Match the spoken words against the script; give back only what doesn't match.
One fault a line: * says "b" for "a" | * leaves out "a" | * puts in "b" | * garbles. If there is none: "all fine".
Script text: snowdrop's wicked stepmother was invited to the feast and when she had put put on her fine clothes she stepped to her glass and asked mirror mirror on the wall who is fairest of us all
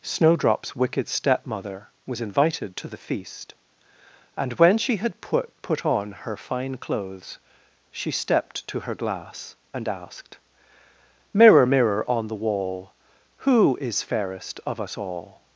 all fine